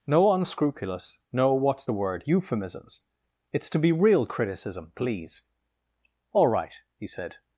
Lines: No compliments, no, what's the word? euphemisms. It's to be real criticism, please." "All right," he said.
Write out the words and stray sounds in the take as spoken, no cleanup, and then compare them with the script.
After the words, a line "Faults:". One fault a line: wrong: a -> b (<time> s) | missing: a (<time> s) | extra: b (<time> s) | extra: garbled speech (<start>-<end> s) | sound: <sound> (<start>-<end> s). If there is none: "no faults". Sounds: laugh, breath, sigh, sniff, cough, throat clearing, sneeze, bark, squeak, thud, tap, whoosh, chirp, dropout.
No unscrupulous, no, what's the word? euphemisms. It's to be real criticism, please." "All right," he said.
Faults:
wrong: compliments -> unscrupulous (0.3 s)